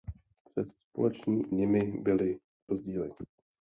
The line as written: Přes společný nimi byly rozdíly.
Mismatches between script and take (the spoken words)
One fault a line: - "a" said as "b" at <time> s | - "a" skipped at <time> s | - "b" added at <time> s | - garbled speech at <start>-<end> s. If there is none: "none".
none